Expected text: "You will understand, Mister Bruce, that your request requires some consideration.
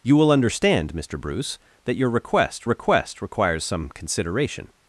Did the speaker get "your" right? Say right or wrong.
right